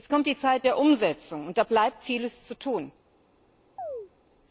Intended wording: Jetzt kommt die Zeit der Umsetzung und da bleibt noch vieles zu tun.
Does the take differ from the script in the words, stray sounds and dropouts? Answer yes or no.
yes